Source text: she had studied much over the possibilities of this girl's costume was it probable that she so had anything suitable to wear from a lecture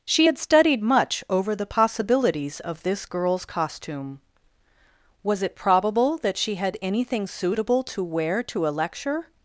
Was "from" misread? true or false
true